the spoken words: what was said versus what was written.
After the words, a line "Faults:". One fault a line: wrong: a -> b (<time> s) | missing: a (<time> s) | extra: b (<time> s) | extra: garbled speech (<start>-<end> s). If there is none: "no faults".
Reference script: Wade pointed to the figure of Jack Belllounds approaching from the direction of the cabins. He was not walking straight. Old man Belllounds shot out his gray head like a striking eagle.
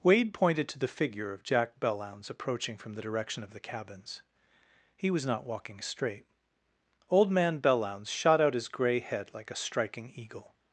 Wade pointed to the figure of Jack Belllounds approaching from the direction of the cabins. He was not walking straight. Old man Belllounds shot out his gray head like a striking eagle.
Faults:
no faults